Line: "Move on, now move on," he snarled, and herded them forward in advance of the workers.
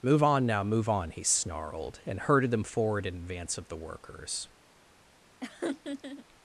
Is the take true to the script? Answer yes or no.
yes